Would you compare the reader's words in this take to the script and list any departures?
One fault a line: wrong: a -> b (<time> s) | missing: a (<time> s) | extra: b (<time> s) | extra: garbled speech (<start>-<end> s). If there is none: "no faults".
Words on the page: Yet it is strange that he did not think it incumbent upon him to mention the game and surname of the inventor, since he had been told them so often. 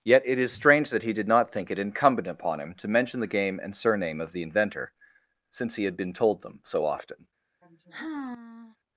no faults